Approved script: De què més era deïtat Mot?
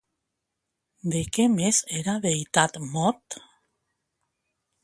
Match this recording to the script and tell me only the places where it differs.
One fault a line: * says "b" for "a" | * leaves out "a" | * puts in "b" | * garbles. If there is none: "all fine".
all fine